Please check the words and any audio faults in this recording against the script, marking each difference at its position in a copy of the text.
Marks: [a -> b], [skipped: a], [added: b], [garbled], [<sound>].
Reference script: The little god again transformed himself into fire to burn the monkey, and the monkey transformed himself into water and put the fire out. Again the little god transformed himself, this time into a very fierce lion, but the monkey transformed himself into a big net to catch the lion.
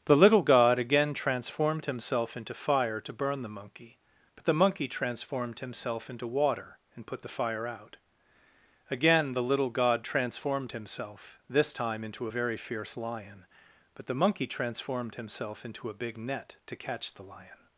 The little god again transformed himself into fire to burn the monkey, [and -> but] the monkey transformed himself into water and put the fire out. Again the little god transformed himself, this time into a very fierce lion, but the monkey transformed himself into a big net to catch the lion.